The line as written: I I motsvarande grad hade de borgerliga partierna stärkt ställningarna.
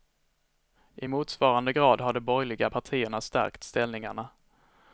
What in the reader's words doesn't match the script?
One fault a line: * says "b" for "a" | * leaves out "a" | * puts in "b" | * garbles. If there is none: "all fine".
* leaves out "I"
* says "har" for "hade"